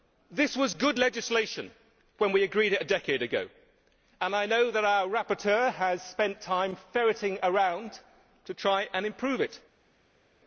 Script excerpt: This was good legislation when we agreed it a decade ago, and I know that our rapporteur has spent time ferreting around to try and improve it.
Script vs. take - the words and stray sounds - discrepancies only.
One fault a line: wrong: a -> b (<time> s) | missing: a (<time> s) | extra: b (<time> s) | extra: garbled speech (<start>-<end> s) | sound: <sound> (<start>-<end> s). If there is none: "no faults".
no faults